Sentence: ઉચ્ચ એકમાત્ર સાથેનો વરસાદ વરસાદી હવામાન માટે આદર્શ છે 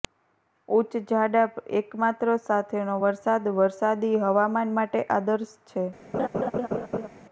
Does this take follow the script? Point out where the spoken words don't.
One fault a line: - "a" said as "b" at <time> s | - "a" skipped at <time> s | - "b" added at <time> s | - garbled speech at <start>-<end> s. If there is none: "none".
- "જાડા" added at 1.1 s